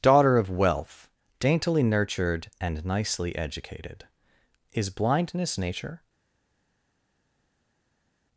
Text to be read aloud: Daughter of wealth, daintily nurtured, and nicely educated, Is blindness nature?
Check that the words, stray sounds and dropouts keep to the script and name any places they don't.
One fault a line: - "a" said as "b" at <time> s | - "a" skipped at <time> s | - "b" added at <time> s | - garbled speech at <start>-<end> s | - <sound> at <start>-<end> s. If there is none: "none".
none